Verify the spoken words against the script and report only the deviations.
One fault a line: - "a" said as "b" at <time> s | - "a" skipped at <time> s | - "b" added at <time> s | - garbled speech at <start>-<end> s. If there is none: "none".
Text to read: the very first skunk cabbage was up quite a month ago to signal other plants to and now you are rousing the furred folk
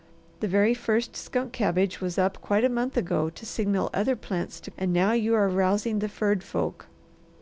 none